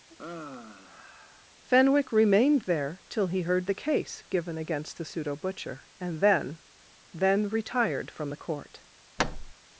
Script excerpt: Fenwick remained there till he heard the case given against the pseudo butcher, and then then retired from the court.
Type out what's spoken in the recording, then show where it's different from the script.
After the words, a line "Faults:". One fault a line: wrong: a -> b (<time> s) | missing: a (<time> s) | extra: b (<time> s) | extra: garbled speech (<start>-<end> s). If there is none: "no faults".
Fenwick remained there till he heard the case given against the pseudo butcher, and then then retired from the court.
Faults:
no faults